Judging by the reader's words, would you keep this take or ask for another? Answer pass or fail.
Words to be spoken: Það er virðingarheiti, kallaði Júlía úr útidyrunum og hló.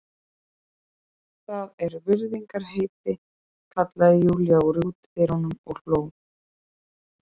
pass